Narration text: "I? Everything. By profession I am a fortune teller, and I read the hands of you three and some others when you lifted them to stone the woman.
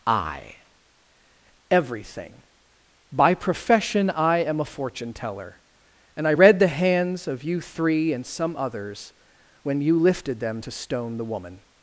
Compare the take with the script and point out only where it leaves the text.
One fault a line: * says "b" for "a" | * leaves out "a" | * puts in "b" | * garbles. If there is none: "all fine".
all fine